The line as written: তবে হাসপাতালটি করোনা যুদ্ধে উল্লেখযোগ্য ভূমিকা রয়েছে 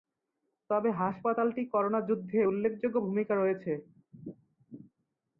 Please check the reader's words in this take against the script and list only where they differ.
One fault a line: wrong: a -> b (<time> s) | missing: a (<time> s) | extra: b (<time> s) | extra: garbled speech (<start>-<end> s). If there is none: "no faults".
no faults